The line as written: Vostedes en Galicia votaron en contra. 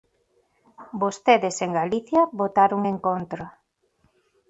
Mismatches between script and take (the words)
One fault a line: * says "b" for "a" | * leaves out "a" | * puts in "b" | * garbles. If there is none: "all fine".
all fine